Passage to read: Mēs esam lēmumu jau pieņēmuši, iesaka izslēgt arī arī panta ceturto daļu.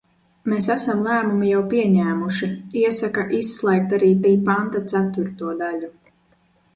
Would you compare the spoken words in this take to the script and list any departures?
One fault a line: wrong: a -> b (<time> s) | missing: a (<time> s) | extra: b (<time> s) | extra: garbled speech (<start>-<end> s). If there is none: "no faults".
no faults